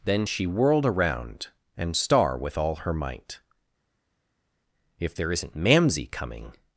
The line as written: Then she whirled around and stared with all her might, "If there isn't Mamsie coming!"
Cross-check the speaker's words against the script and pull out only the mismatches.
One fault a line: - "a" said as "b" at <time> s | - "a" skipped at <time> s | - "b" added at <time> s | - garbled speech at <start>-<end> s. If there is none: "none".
- "stared" said as "star" at 1.9 s